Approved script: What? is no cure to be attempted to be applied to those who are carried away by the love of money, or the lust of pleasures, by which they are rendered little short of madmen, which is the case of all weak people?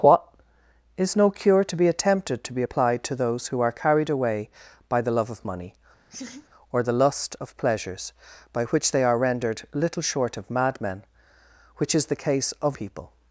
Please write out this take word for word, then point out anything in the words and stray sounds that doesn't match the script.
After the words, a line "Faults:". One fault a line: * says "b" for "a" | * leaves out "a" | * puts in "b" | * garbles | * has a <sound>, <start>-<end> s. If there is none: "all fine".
What? is no cure to be attempted to be applied to those who are carried away by the love of money, or the lust of pleasures, by which they are rendered little short of madmen, which is the case of people?
Faults:
* has a laugh, 6.1-6.5 s
* leaves out "all weak"